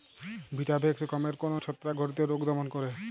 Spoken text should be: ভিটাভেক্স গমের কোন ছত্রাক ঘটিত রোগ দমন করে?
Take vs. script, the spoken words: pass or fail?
pass